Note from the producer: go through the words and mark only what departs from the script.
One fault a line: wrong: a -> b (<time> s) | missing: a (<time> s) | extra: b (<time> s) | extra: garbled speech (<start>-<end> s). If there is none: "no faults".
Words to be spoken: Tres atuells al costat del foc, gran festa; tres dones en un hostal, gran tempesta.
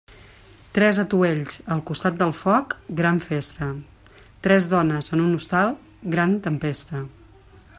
no faults